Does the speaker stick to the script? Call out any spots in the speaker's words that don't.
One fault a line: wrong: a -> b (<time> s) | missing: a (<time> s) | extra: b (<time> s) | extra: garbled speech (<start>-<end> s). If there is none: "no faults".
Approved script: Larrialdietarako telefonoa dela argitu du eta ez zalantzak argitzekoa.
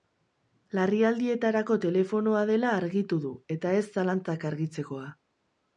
no faults